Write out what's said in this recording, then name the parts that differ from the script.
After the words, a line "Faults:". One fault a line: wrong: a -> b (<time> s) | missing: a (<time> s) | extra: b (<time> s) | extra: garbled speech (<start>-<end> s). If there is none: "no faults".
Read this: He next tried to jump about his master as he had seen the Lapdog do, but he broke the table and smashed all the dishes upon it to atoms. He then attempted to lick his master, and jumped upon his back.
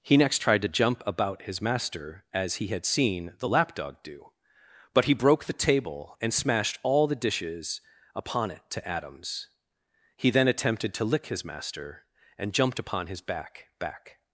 He next tried to jump about his master as he had seen the Lapdog do, but he broke the table and smashed all the dishes upon it to atoms. He then attempted to lick his master, and jumped upon his back back.
Faults:
extra: back (13.8 s)